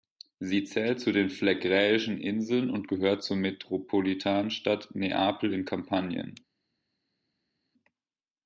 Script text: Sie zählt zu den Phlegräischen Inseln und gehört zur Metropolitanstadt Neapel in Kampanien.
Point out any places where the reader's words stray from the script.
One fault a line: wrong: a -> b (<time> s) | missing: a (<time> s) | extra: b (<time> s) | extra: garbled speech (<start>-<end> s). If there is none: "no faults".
no faults